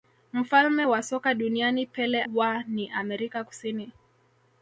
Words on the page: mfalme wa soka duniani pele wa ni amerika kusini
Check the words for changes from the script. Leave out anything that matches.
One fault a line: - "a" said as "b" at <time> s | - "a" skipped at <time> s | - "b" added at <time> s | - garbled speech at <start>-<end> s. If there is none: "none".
none